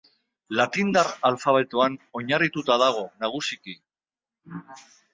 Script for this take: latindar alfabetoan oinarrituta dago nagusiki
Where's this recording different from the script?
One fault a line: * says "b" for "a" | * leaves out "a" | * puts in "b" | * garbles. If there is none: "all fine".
all fine